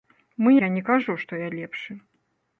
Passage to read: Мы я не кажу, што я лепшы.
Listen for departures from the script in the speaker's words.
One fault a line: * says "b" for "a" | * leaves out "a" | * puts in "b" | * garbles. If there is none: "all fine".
all fine